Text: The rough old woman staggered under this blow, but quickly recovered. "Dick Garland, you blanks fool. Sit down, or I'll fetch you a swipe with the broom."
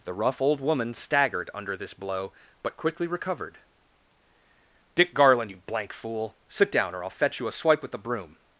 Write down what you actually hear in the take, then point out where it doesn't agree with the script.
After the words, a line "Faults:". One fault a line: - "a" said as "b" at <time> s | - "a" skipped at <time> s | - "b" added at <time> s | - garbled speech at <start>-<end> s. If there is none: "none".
The rough old woman staggered under this blow, but quickly recovered. "Dick Garland, you blank fool. Sit down, or I'll fetch you a swipe with the broom."
Faults:
- "blanks" said as "blank" at 5.6 s